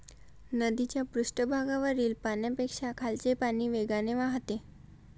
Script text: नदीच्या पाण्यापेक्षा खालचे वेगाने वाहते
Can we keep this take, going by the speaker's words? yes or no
no